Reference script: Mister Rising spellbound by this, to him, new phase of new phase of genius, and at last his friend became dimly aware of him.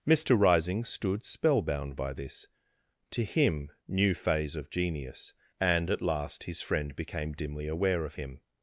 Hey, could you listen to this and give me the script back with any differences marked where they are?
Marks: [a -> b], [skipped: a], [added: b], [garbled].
Mister Rising [added: stood] spellbound by this, to him, new phase of [skipped: new phase of] genius, and at last his friend became dimly aware of him.